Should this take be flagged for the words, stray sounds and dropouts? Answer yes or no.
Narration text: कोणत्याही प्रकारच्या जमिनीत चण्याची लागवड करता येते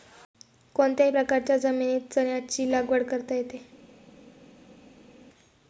no